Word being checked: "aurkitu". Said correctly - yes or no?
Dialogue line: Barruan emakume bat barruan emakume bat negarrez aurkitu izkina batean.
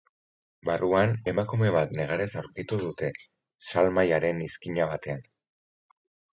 no